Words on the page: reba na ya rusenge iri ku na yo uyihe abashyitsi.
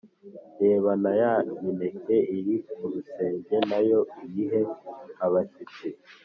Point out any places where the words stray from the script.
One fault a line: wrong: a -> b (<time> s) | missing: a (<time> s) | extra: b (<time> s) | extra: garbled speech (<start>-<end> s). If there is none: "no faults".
wrong: rusenge -> mineke (1.6 s)
extra: rusenge (2.9 s)